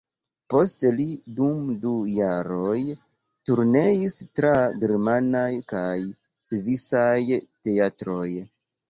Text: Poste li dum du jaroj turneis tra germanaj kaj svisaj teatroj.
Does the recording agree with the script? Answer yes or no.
yes